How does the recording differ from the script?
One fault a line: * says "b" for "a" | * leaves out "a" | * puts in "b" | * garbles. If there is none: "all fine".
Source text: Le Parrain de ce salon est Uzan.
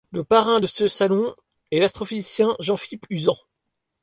* puts in "l'astrophysicien Jean Philippe"